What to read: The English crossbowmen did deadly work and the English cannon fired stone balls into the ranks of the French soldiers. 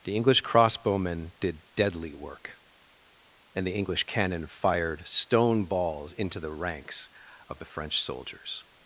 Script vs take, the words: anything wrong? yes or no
no